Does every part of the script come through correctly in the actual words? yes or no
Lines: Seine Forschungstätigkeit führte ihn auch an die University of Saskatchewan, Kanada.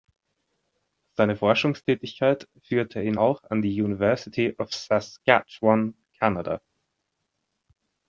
yes